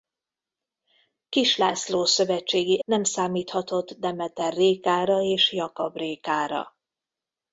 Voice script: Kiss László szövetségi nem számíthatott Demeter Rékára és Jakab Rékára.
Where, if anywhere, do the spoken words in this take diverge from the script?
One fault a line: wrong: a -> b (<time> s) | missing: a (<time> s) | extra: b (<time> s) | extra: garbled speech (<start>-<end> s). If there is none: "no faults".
no faults